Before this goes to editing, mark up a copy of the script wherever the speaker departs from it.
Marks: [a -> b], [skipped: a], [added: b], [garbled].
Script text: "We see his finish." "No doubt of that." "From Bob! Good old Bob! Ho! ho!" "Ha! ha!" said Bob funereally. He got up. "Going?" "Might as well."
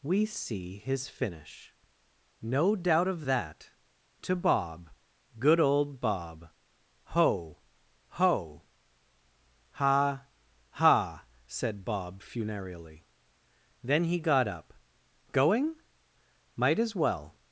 "We see his finish." "No doubt of that." ["From -> To] Bob! Good old Bob! Ho! ho!" "Ha! ha!" said Bob funereally. [added: Then] He got up. "Going?" "Might as well."